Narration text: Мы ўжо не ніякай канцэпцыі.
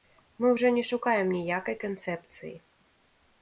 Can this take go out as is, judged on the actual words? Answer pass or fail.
fail